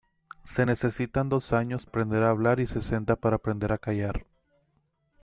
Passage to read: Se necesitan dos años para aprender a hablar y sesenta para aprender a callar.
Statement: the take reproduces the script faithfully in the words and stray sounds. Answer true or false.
false